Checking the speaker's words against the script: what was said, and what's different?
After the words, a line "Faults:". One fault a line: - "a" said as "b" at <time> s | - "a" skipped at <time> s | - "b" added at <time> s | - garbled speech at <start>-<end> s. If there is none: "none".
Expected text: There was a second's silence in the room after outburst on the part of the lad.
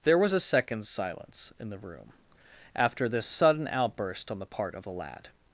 There was a second's silence in the room after this sudden outburst on the part of the lad.
Faults:
- "this sudden" added at 3.1 s